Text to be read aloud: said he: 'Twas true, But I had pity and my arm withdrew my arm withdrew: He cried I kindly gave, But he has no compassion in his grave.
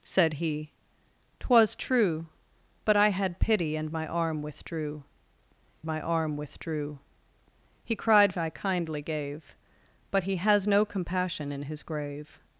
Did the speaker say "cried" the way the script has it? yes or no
yes